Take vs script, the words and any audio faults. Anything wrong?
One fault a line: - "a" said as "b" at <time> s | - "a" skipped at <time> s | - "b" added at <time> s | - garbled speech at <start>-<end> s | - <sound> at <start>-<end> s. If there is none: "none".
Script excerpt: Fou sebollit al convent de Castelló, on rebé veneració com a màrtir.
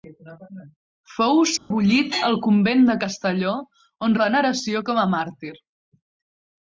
- dropout at 1.6-1.7 s
- "rebé" skipped at 4.2 s